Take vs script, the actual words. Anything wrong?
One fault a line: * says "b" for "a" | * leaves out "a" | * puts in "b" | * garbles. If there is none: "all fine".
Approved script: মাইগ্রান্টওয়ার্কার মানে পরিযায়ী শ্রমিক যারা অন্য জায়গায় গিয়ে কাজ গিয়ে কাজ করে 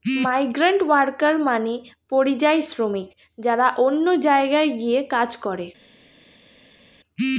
* leaves out "গিয়ে কাজ"